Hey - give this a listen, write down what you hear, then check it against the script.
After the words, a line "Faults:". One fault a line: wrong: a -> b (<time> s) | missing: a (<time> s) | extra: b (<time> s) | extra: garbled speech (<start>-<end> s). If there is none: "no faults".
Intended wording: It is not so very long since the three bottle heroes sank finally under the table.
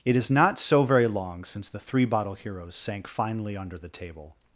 It is not so very long since the three bottle heroes sank finally under the table.
Faults:
no faults